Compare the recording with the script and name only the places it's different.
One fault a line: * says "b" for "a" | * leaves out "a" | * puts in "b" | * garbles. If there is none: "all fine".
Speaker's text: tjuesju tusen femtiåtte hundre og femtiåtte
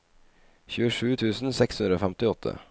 * says "seks" for "femtiåtte"